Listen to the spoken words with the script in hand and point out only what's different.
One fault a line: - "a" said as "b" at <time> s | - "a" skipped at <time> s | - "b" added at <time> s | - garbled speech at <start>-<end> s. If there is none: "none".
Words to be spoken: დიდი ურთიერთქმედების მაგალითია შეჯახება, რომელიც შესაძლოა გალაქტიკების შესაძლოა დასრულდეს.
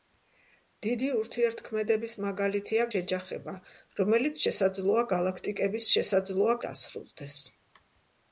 none